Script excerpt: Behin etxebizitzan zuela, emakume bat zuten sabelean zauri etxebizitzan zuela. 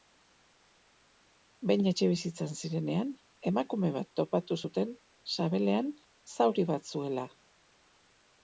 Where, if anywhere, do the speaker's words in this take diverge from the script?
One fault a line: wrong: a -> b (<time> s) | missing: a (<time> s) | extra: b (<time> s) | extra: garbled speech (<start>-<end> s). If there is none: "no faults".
wrong: zuela -> zirenean (2.6 s)
extra: topatu (4.2 s)
wrong: etxebizitzan -> bat (6.7 s)